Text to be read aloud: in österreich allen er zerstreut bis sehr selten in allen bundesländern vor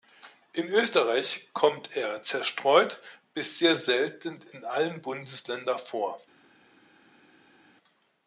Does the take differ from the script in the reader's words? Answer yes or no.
yes